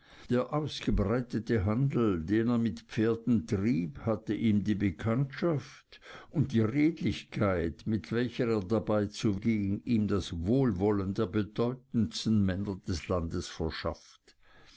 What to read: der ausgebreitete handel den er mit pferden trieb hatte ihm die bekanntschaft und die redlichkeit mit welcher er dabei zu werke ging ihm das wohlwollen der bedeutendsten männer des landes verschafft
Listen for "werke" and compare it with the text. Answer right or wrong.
wrong